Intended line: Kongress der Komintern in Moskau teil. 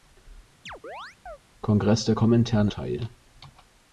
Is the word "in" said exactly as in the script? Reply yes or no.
no